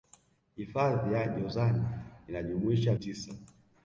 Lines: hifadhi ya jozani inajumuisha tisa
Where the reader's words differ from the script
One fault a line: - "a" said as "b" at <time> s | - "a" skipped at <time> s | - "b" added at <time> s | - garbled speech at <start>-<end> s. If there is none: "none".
none